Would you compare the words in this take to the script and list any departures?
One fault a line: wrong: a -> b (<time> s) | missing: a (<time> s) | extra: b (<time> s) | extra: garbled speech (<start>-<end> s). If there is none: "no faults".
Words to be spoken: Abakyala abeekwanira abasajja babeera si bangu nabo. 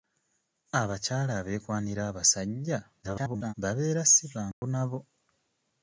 extra: garbled speech (3.0-3.5 s)